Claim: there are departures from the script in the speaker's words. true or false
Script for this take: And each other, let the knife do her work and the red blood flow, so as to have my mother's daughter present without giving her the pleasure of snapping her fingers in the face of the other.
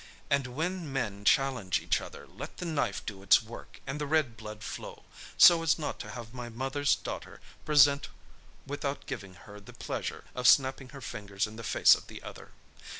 true